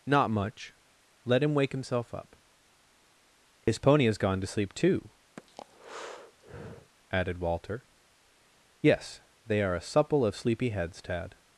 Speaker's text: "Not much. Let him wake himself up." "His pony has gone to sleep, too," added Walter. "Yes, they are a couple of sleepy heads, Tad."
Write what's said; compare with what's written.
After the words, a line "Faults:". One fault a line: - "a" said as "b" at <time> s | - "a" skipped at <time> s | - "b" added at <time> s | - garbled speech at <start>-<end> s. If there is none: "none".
"Not much. Let him wake himself up." "His pony has gone to sleep, too," added Walter. "Yes, they are a supple of sleepy heads, Tad."
Faults:
- "couple" said as "supple" at 9.8 s